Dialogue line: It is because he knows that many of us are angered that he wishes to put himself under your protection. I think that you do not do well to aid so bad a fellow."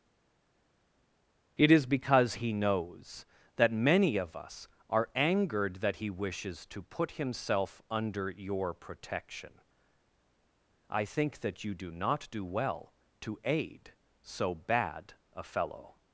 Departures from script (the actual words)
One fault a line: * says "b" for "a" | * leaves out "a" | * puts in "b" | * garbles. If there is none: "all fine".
all fine